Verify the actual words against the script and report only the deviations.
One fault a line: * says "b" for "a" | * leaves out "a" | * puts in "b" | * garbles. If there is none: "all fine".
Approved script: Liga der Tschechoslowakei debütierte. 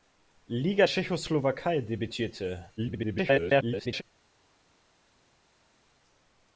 * leaves out "der"
* garbles